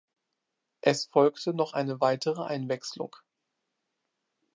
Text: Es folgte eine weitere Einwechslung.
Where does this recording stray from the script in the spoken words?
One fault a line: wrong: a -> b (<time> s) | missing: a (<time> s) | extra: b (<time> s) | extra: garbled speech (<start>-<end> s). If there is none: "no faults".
extra: noch (1.5 s)